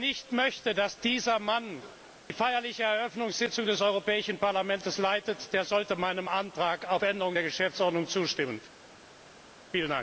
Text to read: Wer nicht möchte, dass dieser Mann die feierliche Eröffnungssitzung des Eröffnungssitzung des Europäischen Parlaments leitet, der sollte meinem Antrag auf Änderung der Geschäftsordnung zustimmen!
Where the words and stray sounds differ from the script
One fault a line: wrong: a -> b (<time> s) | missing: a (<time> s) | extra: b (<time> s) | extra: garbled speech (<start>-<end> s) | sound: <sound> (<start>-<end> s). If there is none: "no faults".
missing: Eröffnungssitzung des (3.8 s)